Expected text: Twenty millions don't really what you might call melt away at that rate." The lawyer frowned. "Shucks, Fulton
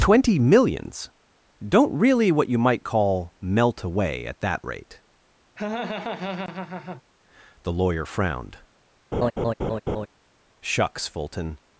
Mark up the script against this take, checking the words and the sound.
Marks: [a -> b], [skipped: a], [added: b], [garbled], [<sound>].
Twenty millions don't really what you might call melt away at that rate." [laugh] The lawyer frowned. [laugh] "Shucks, Fulton